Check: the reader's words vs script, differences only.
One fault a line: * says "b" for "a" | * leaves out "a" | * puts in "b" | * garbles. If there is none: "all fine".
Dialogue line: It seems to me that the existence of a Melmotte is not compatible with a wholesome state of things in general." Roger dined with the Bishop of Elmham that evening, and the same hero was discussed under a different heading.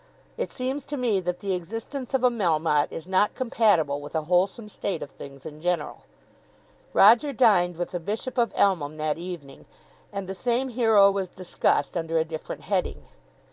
all fine